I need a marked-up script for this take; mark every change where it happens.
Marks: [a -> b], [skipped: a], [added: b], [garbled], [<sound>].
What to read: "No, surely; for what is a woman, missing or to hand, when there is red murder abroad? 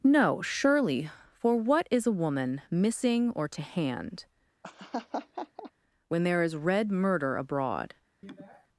"No, surely; for what is a woman, missing or to hand, [laugh] when there is red murder abroad? [sniff]